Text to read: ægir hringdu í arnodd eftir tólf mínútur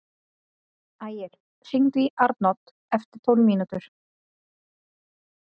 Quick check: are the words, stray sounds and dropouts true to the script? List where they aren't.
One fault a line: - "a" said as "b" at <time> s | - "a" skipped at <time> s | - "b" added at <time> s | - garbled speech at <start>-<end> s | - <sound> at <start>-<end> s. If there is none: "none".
none